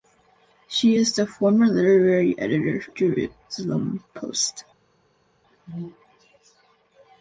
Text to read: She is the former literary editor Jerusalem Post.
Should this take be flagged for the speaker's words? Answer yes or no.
no